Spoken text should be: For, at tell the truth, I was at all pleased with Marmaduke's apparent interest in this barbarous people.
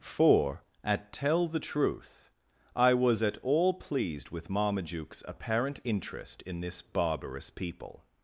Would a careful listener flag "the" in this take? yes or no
no